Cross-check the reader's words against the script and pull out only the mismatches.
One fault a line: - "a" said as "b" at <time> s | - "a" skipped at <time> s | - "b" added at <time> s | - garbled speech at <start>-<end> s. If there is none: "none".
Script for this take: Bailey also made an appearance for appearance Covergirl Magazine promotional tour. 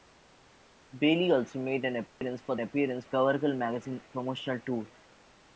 none